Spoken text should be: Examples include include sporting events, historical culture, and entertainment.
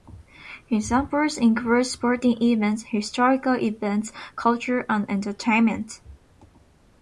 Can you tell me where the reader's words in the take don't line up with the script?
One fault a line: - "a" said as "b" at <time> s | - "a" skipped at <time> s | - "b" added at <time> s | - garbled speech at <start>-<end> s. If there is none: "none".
- "include" skipped at 1.9 s
- "events" added at 3.5 s